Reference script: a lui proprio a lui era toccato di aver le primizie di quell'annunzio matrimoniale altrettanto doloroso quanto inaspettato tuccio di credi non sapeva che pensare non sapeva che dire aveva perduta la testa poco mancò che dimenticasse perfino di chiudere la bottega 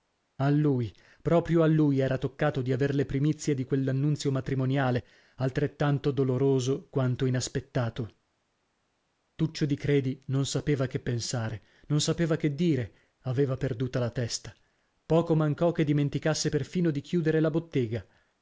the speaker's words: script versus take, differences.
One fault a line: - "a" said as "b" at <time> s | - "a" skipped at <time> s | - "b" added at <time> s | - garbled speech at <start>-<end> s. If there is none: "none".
none